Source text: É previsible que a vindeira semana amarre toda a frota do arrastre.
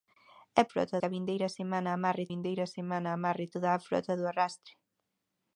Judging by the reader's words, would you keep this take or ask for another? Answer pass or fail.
fail